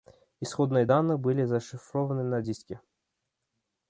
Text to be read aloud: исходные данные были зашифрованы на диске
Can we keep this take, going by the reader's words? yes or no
yes